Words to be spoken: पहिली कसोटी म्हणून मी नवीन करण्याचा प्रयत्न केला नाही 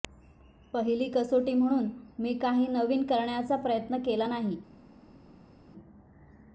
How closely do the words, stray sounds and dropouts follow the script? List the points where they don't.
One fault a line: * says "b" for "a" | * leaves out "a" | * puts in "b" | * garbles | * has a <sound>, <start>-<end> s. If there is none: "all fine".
* puts in "काही"